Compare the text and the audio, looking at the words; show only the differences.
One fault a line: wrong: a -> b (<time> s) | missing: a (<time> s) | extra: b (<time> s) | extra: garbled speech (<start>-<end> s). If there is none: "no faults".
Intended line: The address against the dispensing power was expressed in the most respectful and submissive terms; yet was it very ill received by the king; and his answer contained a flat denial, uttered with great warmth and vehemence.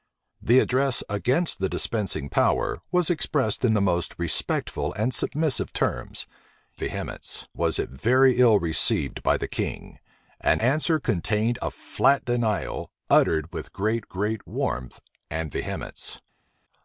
wrong: yet -> vehemence (6.8 s)
missing: his (10.6 s)
extra: great (14.1 s)